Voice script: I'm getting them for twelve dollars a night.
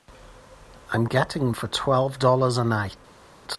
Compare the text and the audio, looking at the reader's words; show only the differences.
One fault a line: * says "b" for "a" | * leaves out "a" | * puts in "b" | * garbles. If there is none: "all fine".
* leaves out "them"